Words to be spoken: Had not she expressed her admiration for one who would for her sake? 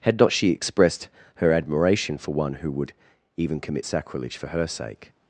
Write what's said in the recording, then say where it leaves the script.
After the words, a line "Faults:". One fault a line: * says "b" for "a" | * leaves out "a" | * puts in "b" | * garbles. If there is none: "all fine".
Had not she expressed her admiration for one who would even commit sacrilege for her sake?
Faults:
* puts in "even commit sacrilege"